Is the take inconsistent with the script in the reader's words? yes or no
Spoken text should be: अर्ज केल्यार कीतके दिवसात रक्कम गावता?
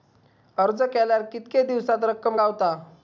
no